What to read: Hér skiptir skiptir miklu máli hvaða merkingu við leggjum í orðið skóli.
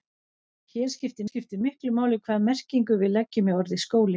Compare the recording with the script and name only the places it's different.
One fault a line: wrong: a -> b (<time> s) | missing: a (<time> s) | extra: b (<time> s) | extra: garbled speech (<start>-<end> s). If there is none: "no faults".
no faults